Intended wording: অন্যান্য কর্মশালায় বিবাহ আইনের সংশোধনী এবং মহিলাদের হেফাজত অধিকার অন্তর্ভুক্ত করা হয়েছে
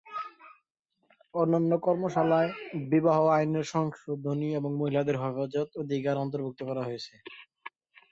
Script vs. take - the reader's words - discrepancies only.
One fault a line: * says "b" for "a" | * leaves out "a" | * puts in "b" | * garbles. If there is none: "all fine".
all fine